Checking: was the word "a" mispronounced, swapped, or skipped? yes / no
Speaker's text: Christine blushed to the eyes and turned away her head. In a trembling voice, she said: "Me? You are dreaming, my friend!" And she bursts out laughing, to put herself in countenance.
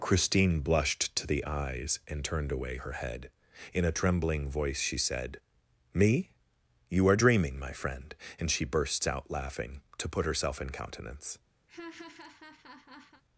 no